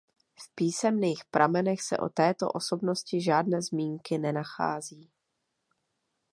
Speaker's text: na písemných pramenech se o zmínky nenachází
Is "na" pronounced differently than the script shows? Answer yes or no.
yes